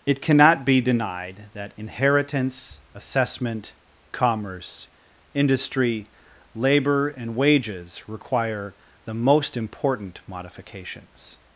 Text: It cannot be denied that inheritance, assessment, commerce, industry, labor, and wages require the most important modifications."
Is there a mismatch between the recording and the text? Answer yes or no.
no